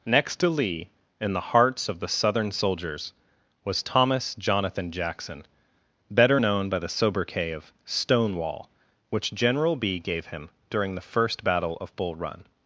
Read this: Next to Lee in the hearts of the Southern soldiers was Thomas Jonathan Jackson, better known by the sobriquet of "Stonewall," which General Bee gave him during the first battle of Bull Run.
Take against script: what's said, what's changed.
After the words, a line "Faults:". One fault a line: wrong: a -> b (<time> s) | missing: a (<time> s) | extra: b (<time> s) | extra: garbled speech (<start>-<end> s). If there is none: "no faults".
Next to Lee in the hearts of the Southern soldiers was Thomas Jonathan Jackson, better known by the sobriquet of "Stonewall," which General Bee gave him during the first battle of Bull Run.
Faults:
no faults